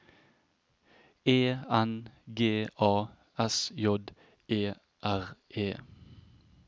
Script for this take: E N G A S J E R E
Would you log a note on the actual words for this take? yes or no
no